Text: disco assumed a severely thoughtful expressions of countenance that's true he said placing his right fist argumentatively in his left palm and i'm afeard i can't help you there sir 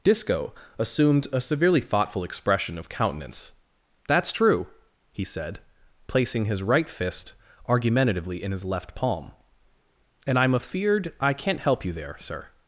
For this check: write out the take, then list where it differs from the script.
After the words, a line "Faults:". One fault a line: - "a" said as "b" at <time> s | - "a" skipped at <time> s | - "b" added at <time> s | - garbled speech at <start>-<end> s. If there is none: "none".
disco assumed a severely thoughtful expression of countenance that's true he said placing his right fist argumentatively in his left palm and i'm afeard i can't help you there sir
Faults:
- "expressions" said as "expression" at 2.2 s